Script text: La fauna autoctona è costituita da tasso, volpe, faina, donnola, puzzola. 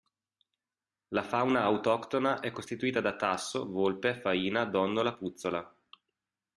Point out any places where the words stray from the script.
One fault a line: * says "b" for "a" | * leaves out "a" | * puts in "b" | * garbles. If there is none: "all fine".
all fine